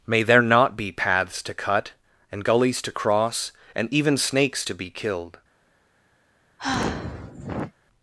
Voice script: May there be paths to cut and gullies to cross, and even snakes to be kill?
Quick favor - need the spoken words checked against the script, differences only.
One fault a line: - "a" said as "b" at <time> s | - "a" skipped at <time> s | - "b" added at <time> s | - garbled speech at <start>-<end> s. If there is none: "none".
- "not" added at 0.4 s
- "kill" said as "killed" at 4.9 s